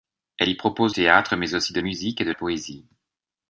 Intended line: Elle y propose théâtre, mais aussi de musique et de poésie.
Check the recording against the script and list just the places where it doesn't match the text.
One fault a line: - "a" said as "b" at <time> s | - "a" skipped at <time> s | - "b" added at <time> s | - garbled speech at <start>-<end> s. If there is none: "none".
none